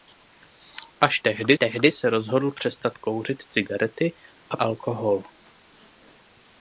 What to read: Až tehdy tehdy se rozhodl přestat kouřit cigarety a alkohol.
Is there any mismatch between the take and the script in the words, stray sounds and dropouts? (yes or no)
no